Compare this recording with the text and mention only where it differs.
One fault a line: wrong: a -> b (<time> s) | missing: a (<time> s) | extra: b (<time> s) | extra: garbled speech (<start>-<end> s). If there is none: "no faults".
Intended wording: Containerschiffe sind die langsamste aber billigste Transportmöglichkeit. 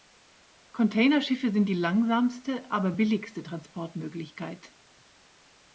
no faults